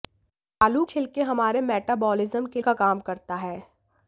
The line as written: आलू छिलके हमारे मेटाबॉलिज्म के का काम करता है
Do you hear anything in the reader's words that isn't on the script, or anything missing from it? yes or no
no